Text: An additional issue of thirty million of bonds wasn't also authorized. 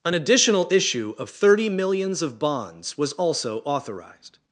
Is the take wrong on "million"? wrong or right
wrong